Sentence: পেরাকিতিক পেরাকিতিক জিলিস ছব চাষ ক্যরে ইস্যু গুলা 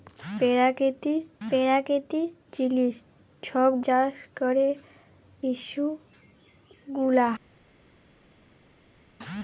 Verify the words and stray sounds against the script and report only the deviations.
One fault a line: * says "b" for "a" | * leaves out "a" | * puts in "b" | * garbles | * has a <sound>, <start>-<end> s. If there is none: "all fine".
all fine